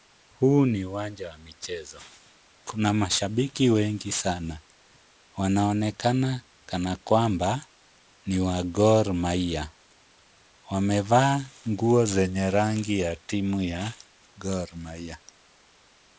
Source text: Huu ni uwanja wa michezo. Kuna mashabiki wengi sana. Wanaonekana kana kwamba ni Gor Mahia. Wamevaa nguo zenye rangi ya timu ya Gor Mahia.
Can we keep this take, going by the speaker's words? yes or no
no